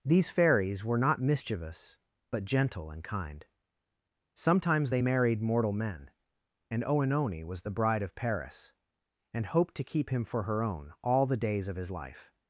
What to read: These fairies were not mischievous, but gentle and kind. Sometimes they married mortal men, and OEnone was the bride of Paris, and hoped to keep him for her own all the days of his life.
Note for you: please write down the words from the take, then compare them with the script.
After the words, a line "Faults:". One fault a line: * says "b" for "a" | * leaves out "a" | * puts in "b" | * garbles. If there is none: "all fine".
These fairies were not mischievous, but gentle and kind. Sometimes they married mortal men, and OEnone was the bride of Paris, and hoped to keep him for her own all the days of his life.
Faults:
all fine